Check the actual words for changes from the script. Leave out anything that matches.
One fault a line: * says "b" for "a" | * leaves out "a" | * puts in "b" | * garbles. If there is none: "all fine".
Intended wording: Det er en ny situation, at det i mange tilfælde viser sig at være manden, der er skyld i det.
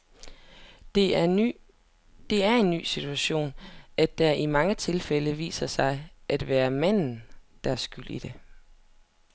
all fine